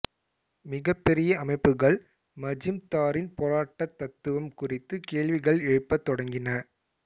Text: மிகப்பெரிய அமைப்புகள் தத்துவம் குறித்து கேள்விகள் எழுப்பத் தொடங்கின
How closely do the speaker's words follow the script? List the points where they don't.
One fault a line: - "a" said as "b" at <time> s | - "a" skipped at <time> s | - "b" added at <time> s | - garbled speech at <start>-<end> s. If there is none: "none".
- "மஜூம்தாரின் போராட்டத்" added at 2.4 s